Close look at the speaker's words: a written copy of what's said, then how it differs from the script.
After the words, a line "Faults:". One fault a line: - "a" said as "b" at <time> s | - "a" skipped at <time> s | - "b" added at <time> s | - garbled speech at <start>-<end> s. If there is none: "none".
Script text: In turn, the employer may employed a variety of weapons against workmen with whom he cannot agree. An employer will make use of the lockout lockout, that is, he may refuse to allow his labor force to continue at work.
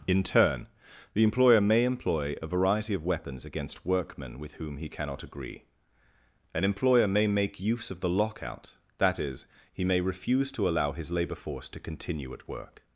In turn, the employer may employ a variety of weapons against workmen with whom he cannot agree. An employer may make use of the lockout, that is, he may refuse to allow his labor force to continue at work.
Faults:
- "employed" said as "employ" at 1.8 s
- "will" said as "may" at 7.1 s
- "lockout" skipped at 8.7 s